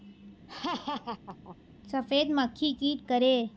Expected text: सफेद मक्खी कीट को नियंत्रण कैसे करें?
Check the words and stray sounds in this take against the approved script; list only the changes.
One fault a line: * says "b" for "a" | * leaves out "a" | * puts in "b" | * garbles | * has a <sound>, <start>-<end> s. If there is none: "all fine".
* has a laugh, 0.5-1.6 s
* leaves out "को नियंत्रण कैसे"